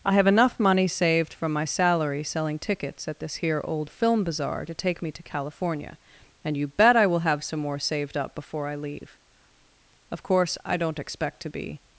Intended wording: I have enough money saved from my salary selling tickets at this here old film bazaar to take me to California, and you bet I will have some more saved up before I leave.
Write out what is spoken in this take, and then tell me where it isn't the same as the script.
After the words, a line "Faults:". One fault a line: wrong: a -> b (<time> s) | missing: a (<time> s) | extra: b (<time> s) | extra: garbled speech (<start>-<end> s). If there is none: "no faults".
I have enough money saved from my salary selling tickets at this here old film bazaar to take me to California, and you bet I will have some more saved up before I leave. Of course, I don't expect to be
Faults:
extra: Of course I don't expect to be (10.1 s)